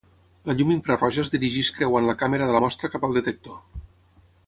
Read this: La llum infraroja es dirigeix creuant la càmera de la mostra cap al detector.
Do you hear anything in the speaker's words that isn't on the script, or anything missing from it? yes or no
no